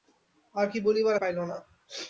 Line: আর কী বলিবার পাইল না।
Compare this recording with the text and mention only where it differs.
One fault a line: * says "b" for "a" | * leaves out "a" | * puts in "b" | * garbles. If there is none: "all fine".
all fine